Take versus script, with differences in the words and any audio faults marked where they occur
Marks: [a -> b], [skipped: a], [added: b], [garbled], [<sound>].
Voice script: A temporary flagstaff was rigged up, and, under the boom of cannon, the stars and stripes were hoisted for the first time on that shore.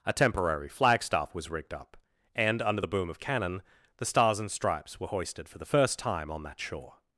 A temporary flagstaff was rigged up, and, under the boom of cannon, the stars and stripes were hoisted for the first time on that shore.